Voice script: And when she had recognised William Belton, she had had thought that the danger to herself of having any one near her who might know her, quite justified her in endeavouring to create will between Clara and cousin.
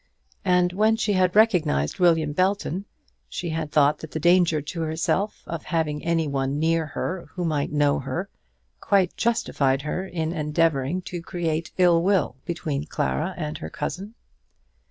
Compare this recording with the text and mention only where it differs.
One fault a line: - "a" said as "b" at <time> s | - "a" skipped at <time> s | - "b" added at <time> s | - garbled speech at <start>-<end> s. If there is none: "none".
- "had" skipped at 3.7 s
- "ill" added at 11.8 s
- "her" added at 13.6 s